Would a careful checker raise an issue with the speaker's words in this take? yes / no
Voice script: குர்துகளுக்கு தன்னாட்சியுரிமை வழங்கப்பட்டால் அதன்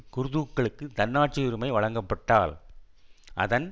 no